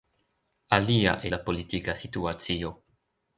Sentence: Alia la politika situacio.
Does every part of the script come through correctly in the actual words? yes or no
yes